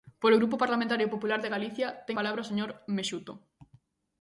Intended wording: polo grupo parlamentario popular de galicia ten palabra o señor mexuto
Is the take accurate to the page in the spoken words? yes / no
yes